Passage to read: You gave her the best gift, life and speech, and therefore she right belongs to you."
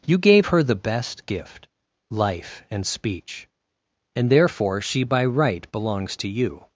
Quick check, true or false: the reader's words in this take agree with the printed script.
false